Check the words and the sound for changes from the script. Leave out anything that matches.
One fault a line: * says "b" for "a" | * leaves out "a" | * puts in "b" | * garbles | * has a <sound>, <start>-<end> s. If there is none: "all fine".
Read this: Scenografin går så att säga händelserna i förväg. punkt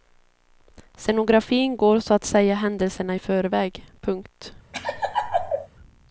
* has a laugh, 4.7-5.7 s